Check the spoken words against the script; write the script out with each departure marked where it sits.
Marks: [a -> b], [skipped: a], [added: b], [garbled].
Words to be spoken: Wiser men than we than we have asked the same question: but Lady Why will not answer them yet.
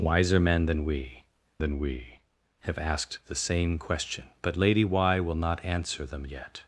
Wiser men than we than we have asked the same question: but Lady Why will not answer them yet.